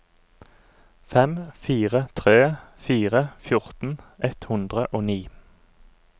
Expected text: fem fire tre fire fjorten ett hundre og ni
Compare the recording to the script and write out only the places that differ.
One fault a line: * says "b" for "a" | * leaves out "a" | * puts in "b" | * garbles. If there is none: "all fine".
all fine